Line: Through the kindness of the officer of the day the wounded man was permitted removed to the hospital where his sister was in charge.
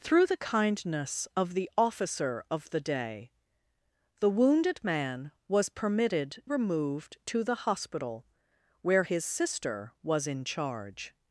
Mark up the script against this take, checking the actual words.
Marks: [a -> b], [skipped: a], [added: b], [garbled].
Through the kindness of the officer of the day the wounded man was permitted removed to the hospital where his sister was in charge.